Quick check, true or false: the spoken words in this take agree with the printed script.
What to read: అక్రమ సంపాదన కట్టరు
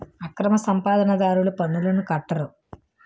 false